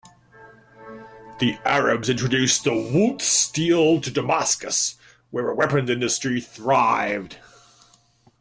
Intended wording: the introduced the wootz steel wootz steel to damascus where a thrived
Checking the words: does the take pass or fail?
fail